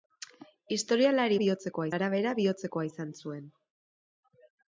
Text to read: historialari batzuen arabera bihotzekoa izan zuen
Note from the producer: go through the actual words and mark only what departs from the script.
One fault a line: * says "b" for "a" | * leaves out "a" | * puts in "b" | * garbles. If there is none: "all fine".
* says "bihotzekoa" for "batzuen"